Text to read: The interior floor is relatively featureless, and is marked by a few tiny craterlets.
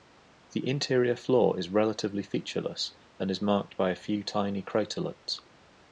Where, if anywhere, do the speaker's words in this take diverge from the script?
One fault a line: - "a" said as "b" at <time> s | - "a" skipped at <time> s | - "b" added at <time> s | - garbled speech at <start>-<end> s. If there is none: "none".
none